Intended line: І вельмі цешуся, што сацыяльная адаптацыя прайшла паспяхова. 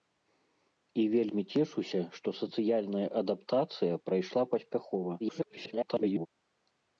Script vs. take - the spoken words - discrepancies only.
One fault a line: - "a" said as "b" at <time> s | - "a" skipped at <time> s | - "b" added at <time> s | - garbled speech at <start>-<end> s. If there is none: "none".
- garbled speech at 5.2-6.3 s